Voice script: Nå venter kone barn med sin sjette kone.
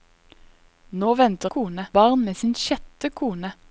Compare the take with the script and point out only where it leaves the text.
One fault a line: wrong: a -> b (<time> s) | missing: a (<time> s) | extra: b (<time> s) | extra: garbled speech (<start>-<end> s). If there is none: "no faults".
no faults